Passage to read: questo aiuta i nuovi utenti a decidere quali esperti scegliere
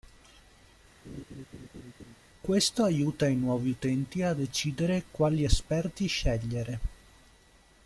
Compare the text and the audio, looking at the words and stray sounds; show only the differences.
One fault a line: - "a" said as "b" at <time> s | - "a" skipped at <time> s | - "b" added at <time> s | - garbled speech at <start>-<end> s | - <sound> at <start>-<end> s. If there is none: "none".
- laugh at 1.0-2.2 s